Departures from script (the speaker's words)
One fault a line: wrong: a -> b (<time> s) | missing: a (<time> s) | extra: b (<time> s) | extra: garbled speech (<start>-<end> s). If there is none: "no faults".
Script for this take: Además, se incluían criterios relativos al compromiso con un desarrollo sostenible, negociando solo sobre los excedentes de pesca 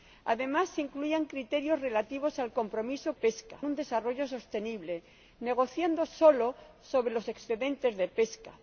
wrong: con -> pesca (3.1 s)